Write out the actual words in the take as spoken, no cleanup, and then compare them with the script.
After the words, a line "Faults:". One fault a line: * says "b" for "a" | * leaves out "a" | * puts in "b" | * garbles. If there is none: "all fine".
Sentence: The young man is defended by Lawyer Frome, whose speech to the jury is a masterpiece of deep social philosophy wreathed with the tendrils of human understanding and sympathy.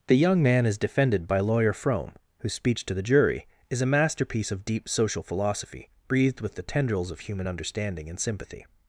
The young man is defended by Lawyer Frome, whose speech to the jury is a masterpiece of deep social philosophy breathed with the tendrils of human understanding and sympathy.
Faults:
* says "breathed" for "wreathed"